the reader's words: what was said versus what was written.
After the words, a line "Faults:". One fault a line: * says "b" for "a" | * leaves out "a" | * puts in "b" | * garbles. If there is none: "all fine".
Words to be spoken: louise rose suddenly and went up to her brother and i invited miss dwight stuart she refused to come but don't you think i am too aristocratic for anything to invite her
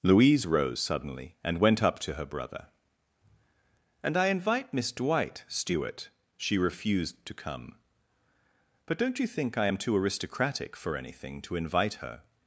louise rose suddenly and went up to her brother and i invite miss dwight stuart she refused to come but don't you think i am too aristocratic for anything to invite her
Faults:
* says "invite" for "invited"